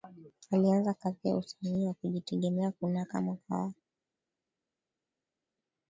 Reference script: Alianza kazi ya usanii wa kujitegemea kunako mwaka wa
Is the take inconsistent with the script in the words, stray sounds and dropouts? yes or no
no